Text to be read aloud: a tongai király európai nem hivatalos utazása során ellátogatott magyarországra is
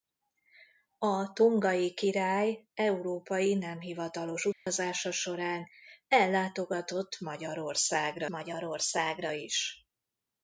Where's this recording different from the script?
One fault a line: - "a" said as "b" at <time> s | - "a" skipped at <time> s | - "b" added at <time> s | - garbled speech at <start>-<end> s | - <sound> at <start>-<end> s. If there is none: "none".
- dropout at 4.5-4.7 s
- "magyarországra" added at 8.3 s